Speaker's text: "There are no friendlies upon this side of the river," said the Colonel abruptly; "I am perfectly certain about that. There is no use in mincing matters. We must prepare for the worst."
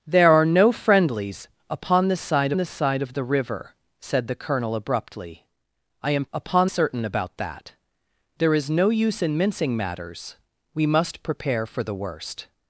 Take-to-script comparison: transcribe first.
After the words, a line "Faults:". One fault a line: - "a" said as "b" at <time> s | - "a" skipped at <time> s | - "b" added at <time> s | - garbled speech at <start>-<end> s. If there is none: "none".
"There are no friendlies upon this side this side of the river," said the Colonel abruptly; "I am upon certain about that. There is no use in mincing matters. We must prepare for the worst."
Faults:
- "this side" added at 2.6 s
- "perfectly" said as "upon" at 6.3 s